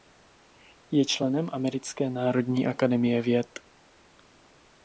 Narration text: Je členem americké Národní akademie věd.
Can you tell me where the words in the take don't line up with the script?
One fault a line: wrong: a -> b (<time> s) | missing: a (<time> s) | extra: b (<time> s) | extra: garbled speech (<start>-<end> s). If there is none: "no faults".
no faults